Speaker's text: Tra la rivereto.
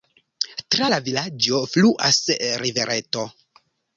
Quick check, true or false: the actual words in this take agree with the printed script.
false